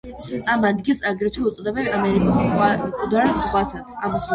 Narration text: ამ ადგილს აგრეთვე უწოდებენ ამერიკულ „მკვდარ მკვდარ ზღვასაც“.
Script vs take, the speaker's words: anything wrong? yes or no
yes